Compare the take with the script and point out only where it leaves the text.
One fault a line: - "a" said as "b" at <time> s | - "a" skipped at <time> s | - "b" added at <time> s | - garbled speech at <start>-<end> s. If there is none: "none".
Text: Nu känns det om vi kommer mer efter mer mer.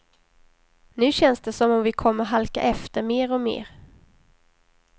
- "som" added at 1.5 s
- "mer" said as "halka" at 2.2 s
- "och" added at 3.3 s